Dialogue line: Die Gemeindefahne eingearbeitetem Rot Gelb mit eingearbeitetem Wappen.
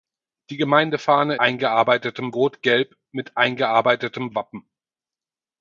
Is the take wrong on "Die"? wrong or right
right